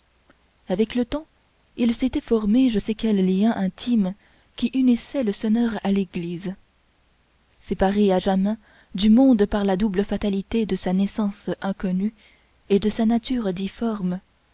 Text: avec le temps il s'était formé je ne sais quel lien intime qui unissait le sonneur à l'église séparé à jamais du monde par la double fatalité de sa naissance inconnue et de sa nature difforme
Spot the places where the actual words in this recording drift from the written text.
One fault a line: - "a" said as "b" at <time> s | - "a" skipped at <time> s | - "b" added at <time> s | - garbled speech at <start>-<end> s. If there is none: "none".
- "ne" skipped at 2.8 s